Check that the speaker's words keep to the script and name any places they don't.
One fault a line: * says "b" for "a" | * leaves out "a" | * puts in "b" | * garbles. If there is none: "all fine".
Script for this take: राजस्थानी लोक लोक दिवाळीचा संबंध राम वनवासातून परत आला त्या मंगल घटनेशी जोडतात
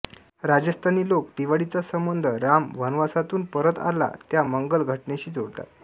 * leaves out "लोक"